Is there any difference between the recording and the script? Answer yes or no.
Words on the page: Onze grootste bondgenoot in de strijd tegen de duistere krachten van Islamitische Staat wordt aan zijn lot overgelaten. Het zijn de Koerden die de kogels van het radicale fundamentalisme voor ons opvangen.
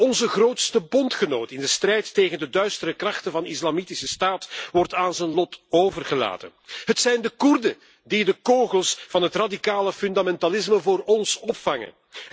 no